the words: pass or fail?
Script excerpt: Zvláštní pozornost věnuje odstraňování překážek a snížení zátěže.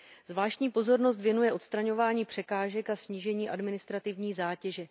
fail